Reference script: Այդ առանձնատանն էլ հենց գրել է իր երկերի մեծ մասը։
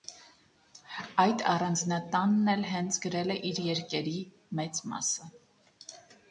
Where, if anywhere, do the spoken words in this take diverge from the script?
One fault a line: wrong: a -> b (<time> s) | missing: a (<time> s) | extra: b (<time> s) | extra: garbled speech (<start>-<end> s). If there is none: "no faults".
no faults